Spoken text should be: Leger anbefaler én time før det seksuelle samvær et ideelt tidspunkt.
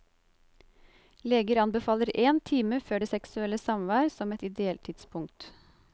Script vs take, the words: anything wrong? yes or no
yes